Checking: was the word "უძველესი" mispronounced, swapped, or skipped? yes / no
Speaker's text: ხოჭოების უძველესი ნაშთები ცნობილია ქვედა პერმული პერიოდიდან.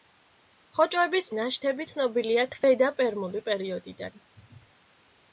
yes